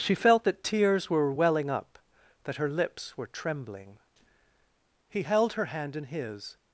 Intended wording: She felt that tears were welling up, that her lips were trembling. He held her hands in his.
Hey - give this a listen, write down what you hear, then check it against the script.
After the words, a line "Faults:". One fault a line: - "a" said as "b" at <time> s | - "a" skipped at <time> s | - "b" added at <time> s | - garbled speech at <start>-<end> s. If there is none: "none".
She felt that tears were welling up, that her lips were trembling. He held her hand in his.
Faults:
- "hands" said as "hand" at 5.7 s